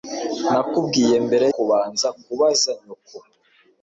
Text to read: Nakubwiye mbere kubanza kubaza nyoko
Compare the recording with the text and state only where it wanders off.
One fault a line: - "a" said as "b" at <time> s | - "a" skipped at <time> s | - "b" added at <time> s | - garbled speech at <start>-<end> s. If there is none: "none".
none